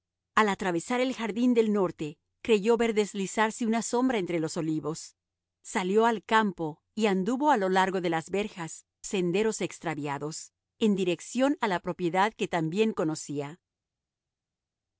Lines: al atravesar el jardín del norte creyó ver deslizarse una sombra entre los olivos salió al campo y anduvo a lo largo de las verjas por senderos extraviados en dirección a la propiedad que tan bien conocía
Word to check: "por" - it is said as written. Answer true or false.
false